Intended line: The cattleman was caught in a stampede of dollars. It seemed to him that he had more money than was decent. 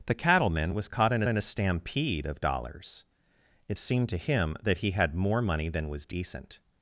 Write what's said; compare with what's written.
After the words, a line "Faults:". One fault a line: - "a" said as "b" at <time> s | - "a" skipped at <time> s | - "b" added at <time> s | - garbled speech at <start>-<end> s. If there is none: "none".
The cattleman was caught in in a stampede of dollars. It seemed to him that he had more money than was decent.
Faults:
- "in" added at 1.3 s